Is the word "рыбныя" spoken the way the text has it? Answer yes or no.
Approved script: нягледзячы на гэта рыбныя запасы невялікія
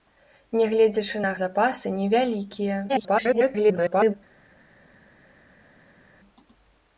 no